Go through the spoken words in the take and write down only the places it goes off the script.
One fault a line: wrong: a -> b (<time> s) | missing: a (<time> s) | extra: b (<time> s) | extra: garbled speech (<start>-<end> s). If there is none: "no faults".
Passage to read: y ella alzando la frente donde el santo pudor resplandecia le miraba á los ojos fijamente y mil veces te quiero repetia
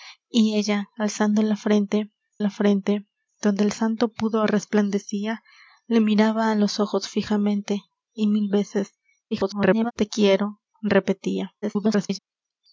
extra: la frente (2.4 s)
extra: garbled speech (9.3-9.9 s)
extra: garbled speech (11.6-12.2 s)